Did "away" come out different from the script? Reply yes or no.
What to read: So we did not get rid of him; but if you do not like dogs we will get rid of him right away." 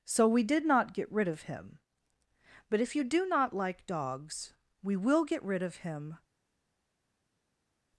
yes